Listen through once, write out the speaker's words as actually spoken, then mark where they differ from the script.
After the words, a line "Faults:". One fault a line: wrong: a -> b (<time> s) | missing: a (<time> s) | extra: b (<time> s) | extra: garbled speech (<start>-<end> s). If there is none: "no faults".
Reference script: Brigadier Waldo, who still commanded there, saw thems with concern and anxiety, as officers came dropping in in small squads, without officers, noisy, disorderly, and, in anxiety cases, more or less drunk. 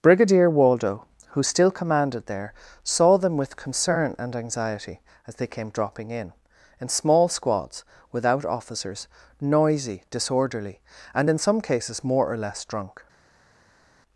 Brigadier Waldo, who still commanded there, saw them with concern and anxiety, as they came dropping in in small squads, without officers, noisy, disorderly, and, in some cases, more or less drunk.
Faults:
wrong: thems -> them (3.2 s)
wrong: officers -> they (5.3 s)
wrong: anxiety -> some (11.4 s)